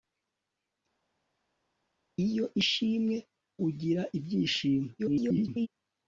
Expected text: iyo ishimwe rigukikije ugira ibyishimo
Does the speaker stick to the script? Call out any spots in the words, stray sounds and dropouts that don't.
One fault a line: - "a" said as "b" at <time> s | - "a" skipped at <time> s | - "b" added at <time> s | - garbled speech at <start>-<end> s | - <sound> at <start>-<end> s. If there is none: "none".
- "rigukikije" skipped at 3.2 s
- garbled speech at 5.0-5.7 s